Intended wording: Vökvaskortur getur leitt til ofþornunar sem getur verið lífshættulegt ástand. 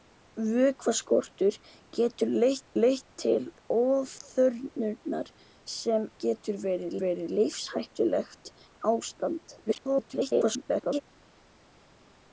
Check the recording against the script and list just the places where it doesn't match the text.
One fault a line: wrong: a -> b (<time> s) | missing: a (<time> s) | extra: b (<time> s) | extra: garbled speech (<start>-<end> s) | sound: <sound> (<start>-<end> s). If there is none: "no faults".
extra: leitt (2.8 s)
extra: verið (7.0 s)
extra: garbled speech (9.7-11.0 s)